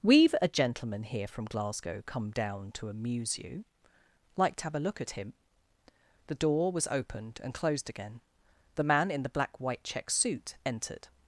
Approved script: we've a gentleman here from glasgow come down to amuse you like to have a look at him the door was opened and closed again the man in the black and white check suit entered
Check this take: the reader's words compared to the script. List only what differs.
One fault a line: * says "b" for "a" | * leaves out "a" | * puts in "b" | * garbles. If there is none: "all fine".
* leaves out "and"